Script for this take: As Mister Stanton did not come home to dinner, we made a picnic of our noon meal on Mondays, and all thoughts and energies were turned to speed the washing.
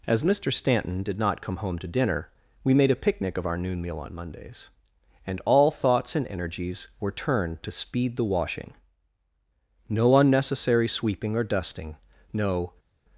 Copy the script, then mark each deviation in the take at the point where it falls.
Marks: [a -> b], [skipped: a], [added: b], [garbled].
As Mister Stanton did not come home to dinner, we made a picnic of our noon meal on Mondays, and all thoughts and energies were turned to speed the washing. [added: No unnecessary sweeping or dusting no]